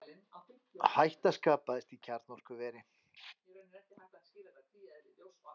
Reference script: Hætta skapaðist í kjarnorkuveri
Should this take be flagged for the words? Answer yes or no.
no